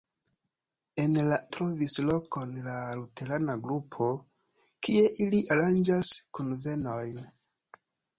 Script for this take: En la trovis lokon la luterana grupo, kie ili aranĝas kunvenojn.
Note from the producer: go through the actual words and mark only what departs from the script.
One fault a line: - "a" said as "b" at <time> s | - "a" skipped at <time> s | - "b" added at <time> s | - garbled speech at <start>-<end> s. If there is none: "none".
none